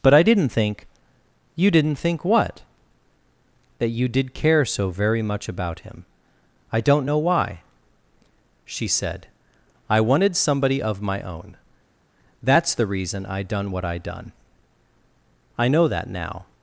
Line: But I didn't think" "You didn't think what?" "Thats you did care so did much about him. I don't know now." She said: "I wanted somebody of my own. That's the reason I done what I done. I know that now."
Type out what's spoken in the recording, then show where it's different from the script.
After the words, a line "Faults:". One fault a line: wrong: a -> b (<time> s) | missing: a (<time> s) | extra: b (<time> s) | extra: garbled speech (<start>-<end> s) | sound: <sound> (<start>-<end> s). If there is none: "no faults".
But I didn't think" "You didn't think what?" "That you did care so very much about him. I don't know why." She said: "I wanted somebody of my own. That's the reason I done what I done. I know that now."
Faults:
wrong: Thats -> That (3.8 s)
wrong: did -> very (4.9 s)
wrong: now -> why (7.2 s)